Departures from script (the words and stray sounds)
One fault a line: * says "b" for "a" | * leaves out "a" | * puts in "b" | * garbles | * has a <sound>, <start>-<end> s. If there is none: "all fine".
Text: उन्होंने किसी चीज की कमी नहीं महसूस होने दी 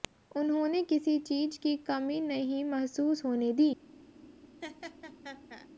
* has a laugh, 4.6-5.7 s